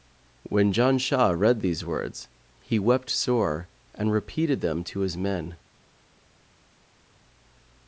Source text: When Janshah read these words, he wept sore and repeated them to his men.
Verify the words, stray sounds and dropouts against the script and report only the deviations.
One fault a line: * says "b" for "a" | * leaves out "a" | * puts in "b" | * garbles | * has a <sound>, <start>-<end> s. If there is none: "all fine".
all fine